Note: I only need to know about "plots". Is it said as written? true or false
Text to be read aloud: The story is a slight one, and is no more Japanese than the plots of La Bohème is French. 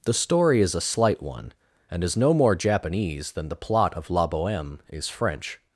false